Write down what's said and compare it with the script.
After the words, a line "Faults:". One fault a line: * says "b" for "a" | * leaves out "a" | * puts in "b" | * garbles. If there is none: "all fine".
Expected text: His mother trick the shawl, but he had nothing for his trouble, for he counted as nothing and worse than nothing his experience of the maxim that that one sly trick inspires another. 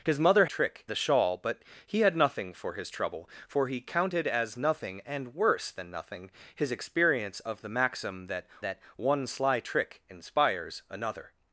His mother trick the shawl, but he had nothing for his trouble, for he counted as nothing and worse than nothing his experience of the maxim that that one sly trick inspires another.
Faults:
all fine